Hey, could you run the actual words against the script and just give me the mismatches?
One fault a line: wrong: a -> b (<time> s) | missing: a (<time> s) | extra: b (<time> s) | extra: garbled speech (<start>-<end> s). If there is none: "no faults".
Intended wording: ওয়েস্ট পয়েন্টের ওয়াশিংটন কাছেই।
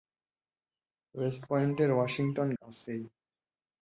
no faults